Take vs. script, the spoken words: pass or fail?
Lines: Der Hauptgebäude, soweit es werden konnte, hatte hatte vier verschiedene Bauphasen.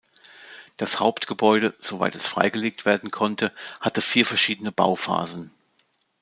fail